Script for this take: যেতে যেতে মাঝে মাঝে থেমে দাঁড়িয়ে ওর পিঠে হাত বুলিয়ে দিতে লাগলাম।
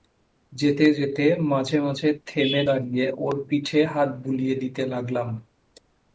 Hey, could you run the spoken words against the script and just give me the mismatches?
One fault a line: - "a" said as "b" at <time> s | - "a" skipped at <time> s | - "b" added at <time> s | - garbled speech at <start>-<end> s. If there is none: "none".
none